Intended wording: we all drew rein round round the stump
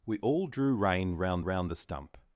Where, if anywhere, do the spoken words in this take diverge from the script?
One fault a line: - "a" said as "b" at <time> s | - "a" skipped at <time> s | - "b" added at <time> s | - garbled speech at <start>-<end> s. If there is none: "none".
none